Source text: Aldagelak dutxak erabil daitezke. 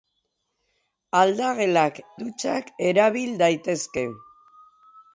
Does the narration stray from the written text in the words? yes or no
no